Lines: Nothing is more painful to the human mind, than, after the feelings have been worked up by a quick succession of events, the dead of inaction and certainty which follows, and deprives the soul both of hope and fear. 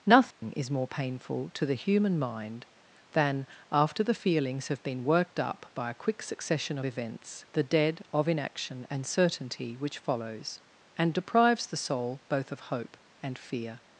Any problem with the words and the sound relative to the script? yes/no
yes